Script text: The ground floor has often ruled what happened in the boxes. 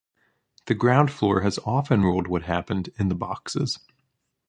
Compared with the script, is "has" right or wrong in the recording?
right